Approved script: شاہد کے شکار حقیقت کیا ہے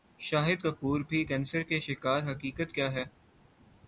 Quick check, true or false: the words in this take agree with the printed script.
false